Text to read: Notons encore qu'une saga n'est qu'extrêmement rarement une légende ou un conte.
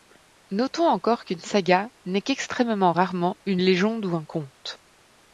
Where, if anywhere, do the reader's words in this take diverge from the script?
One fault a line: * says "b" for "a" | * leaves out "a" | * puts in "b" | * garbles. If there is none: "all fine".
all fine